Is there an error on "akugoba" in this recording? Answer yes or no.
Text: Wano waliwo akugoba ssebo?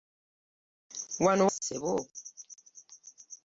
yes